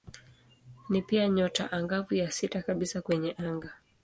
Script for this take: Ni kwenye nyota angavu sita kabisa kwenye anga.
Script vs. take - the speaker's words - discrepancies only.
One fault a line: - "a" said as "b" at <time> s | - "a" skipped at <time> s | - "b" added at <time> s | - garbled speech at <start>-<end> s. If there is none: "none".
- "kwenye" said as "pia" at 1.0 s
- "ya" added at 2.1 s